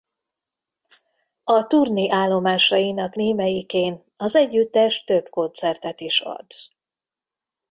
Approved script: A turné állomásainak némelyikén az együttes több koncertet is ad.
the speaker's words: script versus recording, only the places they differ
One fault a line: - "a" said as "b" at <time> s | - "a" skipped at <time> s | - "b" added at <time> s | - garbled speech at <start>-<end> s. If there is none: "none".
none